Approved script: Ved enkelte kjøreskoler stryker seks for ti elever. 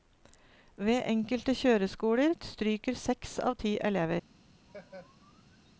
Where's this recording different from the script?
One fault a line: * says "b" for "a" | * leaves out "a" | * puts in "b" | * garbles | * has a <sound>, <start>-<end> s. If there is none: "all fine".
* says "av" for "for"
* has a laugh, 4.7-5.7 s